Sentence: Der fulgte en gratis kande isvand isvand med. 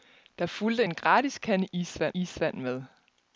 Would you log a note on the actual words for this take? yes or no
no